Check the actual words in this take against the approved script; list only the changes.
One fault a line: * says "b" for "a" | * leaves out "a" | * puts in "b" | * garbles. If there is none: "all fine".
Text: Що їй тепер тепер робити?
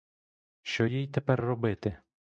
* leaves out "тепер"